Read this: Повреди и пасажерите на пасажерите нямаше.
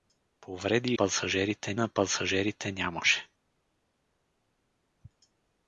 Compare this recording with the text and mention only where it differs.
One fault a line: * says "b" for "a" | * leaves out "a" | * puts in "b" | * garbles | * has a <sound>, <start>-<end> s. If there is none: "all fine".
all fine